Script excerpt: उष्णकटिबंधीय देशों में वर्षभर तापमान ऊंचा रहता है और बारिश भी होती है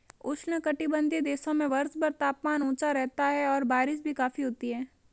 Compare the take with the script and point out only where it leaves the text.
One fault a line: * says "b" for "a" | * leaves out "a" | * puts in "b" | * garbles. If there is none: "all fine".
* puts in "काफी"